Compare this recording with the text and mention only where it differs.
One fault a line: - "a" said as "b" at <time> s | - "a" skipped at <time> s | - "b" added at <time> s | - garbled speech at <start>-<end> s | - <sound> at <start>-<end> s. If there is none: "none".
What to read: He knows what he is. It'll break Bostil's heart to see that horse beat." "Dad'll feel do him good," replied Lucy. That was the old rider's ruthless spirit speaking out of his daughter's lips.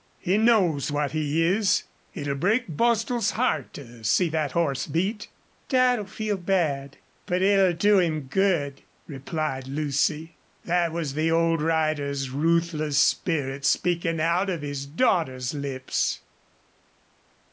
- "bad but it'll" added at 6.4 s